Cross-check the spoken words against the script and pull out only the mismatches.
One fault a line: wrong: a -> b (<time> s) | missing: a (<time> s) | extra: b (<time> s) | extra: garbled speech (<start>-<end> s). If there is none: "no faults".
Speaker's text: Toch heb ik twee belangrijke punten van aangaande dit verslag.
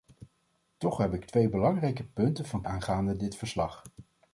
no faults